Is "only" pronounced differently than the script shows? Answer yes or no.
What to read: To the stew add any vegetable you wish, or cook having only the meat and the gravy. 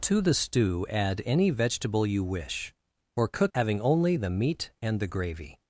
no